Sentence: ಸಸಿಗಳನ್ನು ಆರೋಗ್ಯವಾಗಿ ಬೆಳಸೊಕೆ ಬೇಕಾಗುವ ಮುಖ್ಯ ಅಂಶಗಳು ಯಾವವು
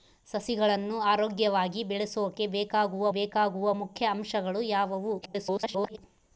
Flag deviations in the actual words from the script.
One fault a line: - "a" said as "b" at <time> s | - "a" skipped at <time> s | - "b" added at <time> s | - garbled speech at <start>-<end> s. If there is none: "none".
- "ಬೇಕಾಗುವ" added at 3.1 s
- garbled speech at 5.2-6.0 s